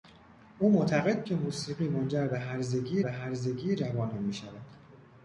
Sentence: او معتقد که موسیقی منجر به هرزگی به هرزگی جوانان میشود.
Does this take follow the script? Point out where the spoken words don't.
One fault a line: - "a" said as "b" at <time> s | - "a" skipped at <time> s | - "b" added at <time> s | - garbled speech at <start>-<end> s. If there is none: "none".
none